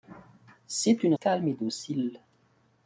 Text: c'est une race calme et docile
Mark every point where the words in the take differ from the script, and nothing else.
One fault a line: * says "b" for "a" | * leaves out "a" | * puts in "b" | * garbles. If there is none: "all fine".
* leaves out "race"